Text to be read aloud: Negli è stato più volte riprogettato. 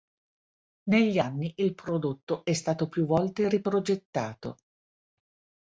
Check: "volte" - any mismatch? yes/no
no